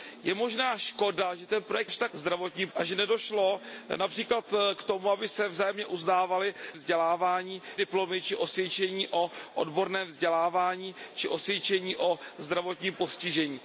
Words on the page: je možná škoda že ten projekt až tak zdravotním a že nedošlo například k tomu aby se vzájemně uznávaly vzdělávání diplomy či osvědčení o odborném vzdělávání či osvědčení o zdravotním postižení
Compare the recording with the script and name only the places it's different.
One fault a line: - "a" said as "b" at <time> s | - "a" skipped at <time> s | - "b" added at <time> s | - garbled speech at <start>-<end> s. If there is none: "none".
none